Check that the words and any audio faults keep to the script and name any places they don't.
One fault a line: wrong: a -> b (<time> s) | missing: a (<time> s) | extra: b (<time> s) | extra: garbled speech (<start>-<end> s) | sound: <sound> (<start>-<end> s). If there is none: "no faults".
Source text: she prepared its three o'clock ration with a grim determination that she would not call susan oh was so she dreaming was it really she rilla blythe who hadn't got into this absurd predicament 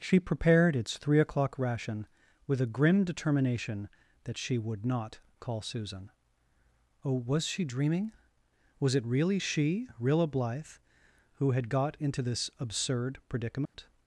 missing: so (7.5 s)
wrong: hadn't -> had (11.5 s)
sound: dropout (13.7-13.7 s)